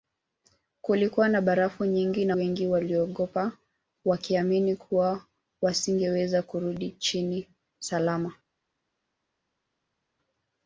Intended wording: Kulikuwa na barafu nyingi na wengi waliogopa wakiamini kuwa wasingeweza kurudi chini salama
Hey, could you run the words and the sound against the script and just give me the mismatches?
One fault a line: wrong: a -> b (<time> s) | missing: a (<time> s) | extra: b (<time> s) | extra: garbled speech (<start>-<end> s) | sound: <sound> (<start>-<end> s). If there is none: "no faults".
no faults